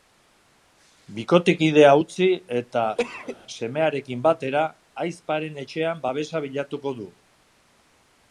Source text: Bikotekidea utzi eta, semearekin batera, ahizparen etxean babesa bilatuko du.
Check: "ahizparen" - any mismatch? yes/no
no